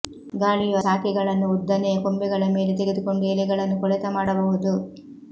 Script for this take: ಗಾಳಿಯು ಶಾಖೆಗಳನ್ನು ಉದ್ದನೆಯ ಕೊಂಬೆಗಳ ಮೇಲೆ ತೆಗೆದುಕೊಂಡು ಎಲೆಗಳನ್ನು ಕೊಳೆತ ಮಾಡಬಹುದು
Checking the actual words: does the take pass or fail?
pass